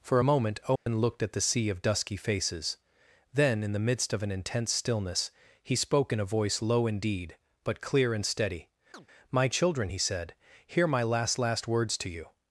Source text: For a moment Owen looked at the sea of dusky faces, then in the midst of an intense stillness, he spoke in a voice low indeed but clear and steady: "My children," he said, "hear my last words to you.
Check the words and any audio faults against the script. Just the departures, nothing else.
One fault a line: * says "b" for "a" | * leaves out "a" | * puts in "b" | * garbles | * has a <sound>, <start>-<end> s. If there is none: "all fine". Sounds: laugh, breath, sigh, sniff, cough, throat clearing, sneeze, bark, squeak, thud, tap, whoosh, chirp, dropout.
* has a dropout, 0.8-0.9 s
* has a chirp, 8.9-9.1 s
* puts in "last"